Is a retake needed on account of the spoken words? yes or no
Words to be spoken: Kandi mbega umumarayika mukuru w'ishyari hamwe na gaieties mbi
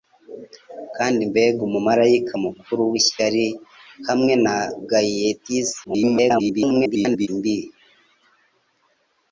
yes